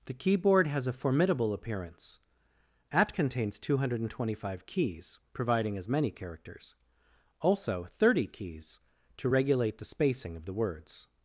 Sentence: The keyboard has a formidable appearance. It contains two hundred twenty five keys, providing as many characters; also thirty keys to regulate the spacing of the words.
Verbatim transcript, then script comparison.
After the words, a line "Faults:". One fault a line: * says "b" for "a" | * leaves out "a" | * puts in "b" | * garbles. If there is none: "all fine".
The keyboard has a formidable appearance. At contains two hundred twenty five keys, providing as many characters; also thirty keys to regulate the spacing of the words.
Faults:
* says "At" for "It"